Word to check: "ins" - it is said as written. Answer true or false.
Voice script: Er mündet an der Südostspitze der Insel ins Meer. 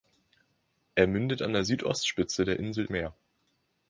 false